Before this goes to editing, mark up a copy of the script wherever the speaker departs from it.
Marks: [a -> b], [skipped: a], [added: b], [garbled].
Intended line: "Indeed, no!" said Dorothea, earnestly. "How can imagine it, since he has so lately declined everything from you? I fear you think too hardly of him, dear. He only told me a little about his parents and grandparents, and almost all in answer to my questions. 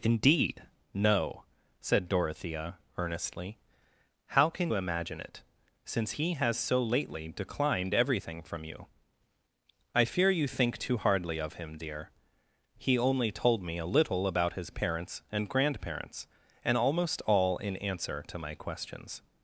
"Indeed, no!" said Dorothea, earnestly. "How can imagine it, since he has so lately declined everything from you? I fear you think too hardly of him, dear. He only told me a little about his parents and grandparents, and almost all in answer to my questions.